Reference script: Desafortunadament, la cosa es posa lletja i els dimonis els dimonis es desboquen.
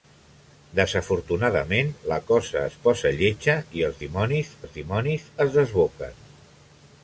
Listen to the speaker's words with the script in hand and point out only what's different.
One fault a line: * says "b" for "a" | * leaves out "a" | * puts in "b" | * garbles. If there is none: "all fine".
all fine